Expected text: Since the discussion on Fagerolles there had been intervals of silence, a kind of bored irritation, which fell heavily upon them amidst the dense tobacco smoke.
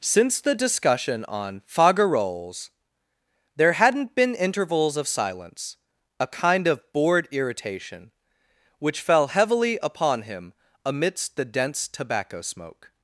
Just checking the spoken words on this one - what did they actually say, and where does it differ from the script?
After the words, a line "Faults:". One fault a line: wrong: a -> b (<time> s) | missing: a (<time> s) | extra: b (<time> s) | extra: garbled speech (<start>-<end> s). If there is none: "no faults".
Since the discussion on Fagerolles there hadn't been intervals of silence, a kind of bored irritation, which fell heavily upon him amidst the dense tobacco smoke.
Faults:
wrong: had -> hadn't (3.7 s)
wrong: them -> him (10.2 s)